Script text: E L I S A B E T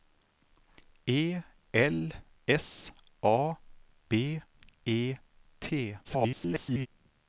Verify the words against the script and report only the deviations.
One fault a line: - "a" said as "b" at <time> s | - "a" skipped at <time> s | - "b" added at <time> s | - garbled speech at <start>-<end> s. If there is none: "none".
- "I" skipped at 2.1 s
- garbled speech at 6.0-6.9 s